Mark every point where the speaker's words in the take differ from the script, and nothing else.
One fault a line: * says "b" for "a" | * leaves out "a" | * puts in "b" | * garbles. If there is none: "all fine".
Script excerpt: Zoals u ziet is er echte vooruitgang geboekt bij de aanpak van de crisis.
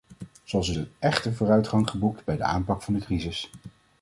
* leaves out "ziet is"